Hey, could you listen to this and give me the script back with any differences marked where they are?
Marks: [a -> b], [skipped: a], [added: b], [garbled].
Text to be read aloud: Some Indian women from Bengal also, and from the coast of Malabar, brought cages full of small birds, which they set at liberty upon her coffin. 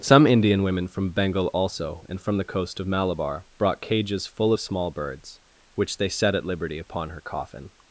Some Indian women from Bengal also, and from the coast of Malabar, brought cages full of small birds, which they set at liberty upon her coffin.